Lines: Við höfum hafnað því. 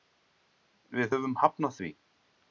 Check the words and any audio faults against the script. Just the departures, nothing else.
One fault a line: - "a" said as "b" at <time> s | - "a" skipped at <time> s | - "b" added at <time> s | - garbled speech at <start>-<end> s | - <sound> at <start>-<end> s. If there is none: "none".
none